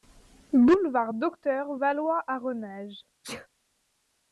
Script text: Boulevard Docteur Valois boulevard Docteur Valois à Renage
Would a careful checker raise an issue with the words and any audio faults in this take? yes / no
yes